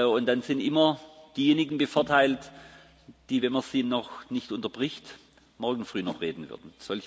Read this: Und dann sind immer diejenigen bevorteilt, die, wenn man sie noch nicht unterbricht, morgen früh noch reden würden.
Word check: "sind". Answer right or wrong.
right